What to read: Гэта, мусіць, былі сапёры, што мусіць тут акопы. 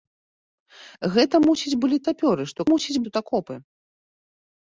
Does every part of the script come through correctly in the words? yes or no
yes